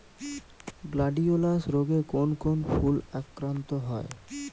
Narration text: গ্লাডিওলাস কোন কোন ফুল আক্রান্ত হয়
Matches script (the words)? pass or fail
fail